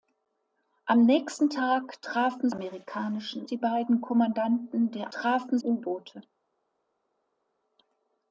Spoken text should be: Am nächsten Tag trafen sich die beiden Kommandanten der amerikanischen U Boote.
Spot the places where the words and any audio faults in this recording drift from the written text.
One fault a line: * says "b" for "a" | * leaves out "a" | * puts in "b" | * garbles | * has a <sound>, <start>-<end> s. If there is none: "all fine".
* says "amerikanischen" for "sich"
* says "trafen" for "amerikanischen"